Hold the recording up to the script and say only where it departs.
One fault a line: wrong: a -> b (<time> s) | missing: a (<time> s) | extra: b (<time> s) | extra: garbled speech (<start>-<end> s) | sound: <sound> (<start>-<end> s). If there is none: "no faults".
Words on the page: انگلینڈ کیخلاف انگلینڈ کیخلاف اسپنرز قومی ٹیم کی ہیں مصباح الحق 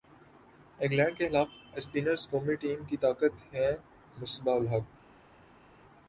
missing: انگلینڈ کیخلاف (1.5 s)
extra: طاقت (3.0 s)